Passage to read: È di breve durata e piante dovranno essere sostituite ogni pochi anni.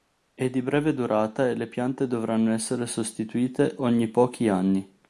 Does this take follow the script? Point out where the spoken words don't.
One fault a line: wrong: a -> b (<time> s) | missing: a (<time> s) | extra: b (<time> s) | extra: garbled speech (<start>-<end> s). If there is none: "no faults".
extra: le (1.6 s)